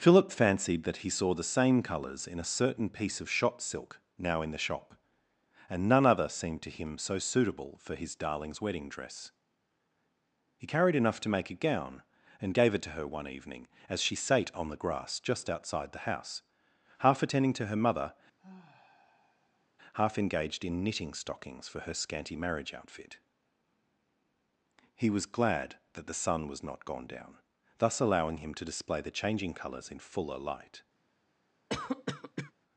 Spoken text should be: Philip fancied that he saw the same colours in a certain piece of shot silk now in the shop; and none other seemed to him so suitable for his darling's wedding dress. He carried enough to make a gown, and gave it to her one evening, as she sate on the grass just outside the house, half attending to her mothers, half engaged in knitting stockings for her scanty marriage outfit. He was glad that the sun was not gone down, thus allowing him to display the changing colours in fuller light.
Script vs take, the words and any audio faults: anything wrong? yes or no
yes